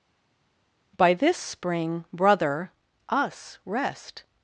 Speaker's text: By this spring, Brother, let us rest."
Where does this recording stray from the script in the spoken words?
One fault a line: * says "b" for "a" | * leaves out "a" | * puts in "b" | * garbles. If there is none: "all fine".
* leaves out "let"